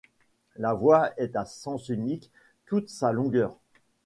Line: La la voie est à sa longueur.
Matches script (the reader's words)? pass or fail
fail